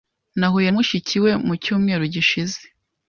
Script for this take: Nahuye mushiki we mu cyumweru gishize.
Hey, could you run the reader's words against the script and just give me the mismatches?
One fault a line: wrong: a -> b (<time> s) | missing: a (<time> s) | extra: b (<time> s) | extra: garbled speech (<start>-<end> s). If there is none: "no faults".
no faults